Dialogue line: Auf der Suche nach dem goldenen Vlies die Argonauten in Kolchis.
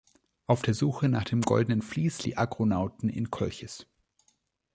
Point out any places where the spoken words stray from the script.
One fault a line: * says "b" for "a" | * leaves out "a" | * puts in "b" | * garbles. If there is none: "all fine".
all fine